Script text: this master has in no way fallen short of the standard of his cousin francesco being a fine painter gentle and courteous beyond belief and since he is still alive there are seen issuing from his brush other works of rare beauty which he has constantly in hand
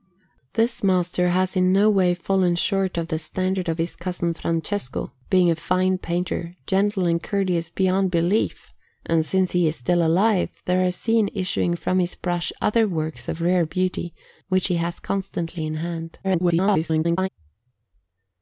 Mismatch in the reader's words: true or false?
true